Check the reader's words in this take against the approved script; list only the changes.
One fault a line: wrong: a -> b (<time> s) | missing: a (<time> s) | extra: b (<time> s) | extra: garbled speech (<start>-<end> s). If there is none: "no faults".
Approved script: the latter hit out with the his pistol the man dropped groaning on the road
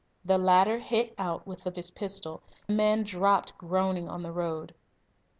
no faults